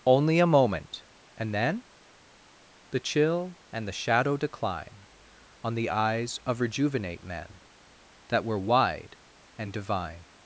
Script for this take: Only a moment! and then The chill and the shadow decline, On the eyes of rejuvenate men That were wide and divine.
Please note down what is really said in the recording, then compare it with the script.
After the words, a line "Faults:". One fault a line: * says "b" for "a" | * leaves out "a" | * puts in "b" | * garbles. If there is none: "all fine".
Only a moment! and then The chill and the shadow decline, On the eyes of rejuvenate men That were wide and divine.
Faults:
all fine